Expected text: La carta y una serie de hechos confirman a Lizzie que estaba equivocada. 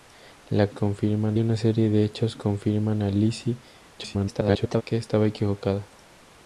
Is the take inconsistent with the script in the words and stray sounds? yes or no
yes